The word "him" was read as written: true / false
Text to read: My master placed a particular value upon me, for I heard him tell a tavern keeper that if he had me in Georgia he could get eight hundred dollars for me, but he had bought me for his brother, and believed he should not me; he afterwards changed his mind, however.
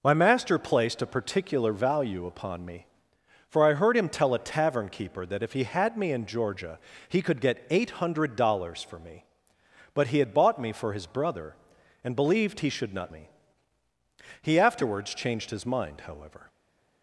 true